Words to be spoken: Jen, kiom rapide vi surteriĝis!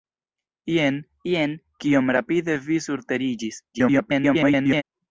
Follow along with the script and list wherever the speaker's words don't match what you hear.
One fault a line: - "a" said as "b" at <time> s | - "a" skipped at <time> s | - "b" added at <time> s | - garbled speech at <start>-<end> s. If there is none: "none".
- "jen" added at 1.3 s
- garbled speech at 3.7-4.8 s